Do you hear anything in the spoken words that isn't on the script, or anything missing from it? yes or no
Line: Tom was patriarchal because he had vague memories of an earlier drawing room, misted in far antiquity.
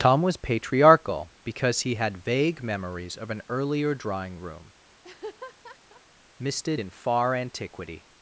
no